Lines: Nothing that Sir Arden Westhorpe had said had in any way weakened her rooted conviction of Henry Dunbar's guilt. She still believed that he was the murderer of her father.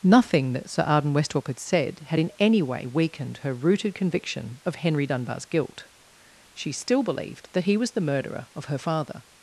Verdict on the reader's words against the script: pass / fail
pass